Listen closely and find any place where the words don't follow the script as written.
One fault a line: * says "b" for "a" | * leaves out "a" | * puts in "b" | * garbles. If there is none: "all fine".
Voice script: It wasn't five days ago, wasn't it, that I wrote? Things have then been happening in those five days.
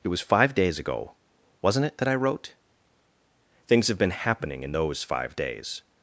* says "was" for "wasn't"
* leaves out "then"